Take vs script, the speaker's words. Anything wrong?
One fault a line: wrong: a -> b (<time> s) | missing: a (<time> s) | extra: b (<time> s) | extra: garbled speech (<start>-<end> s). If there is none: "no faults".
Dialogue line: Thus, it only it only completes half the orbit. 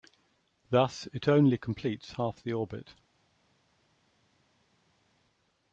missing: it only (1.6 s)